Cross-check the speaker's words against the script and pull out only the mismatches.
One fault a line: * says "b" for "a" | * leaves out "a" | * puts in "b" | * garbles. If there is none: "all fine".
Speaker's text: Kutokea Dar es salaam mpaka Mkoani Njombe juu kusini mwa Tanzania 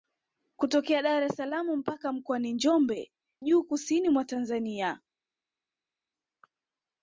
all fine